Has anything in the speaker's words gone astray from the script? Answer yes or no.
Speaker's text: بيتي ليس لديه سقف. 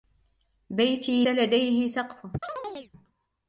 yes